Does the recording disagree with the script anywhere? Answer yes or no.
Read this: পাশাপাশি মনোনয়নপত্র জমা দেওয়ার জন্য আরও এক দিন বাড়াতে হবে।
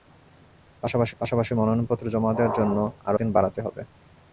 yes